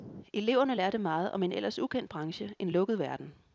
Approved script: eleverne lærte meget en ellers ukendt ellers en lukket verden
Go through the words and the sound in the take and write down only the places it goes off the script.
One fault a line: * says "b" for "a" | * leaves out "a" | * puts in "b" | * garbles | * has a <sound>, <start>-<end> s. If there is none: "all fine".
* puts in "om"
* says "branche" for "ellers"